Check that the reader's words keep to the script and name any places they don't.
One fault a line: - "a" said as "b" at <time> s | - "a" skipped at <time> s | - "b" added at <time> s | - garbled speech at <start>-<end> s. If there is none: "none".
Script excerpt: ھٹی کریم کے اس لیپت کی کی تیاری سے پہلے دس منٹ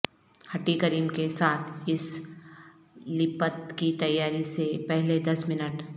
- "ساتھ" added at 1.3 s
- "کی" skipped at 3.9 s